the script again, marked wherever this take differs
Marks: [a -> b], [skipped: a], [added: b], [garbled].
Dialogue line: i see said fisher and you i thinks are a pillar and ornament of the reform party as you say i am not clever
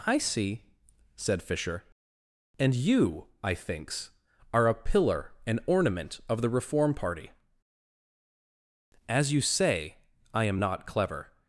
i see said fisher and you i thinks are a pillar and ornament of the reform party as you say i am not clever